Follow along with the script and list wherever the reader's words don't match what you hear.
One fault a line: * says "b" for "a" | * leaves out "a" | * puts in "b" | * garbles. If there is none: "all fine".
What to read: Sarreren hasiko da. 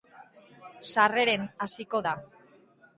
all fine